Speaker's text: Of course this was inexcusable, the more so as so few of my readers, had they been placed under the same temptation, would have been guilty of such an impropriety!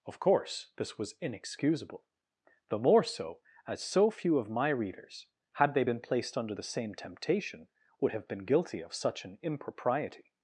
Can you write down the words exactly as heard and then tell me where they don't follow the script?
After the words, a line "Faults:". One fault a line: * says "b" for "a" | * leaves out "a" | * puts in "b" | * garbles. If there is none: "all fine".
Of course this was inexcusable, the more so as so few of my readers, had they been placed under the same temptation, would have been guilty of such an impropriety!
Faults:
all fine